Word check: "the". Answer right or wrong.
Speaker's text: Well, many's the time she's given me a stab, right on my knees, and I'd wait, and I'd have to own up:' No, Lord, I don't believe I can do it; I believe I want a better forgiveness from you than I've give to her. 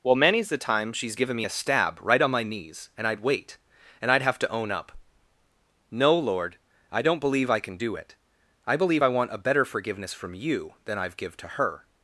right